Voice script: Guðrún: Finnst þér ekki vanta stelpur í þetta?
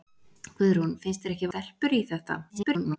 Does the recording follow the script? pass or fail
fail